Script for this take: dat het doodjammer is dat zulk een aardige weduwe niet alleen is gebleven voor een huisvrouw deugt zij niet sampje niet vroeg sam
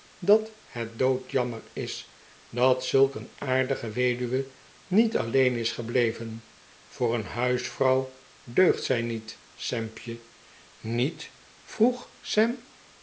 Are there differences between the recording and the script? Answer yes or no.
no